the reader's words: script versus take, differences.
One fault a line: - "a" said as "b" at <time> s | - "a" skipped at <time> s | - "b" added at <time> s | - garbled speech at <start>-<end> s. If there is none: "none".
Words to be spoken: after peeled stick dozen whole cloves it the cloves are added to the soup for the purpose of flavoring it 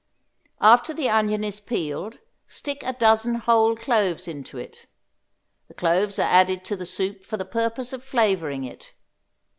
- "the onion is" added at 0.9 s
- "a" added at 2.8 s
- "into" added at 4.3 s